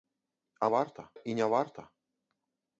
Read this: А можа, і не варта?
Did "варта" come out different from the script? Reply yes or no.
no